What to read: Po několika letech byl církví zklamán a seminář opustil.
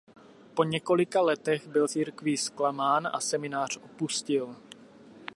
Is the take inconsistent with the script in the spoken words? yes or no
no